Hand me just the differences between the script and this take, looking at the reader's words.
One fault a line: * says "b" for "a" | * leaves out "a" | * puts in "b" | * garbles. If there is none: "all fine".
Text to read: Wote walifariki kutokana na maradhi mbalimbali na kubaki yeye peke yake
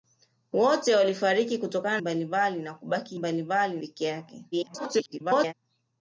* leaves out "na maradhi"
* says "mbalimbali" for "yeye"
* garbles